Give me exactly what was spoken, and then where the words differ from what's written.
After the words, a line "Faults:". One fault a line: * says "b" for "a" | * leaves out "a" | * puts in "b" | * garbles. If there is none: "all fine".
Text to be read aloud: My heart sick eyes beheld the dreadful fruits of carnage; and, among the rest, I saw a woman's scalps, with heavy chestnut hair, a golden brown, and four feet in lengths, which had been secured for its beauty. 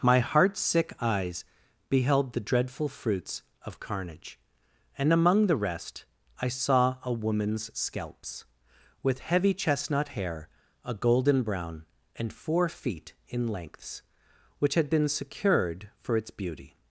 My heart sick eyes beheld the dreadful fruits of carnage; and, among the rest, I saw a woman's scalps, with heavy chestnut hair, a golden brown, and four feet in lengths, which had been secured for its beauty.
Faults:
all fine